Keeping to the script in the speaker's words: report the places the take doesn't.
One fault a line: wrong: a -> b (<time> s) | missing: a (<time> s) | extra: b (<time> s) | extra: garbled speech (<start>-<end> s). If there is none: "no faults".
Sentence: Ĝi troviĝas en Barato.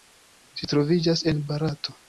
no faults